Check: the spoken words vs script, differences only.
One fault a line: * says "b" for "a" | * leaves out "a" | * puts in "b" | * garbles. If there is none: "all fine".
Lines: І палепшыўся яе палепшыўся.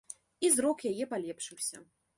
* says "зрок" for "палепшыўся"